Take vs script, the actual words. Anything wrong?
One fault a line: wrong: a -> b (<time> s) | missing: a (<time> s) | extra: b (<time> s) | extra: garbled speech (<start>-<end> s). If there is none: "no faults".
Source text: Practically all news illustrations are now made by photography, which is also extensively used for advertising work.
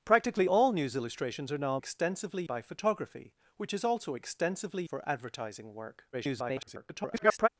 wrong: made -> extensively (1.8 s)
missing: used (4.8 s)
extra: garbled speech (6.1-7.5 s)